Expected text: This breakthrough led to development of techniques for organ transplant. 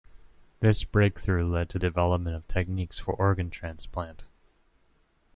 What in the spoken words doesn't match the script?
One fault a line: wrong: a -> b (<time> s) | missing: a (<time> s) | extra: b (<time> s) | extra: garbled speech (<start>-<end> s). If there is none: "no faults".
no faults